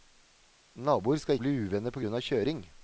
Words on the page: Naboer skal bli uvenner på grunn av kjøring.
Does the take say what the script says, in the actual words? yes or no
yes